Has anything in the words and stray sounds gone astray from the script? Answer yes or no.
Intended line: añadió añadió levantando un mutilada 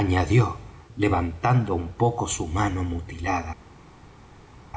yes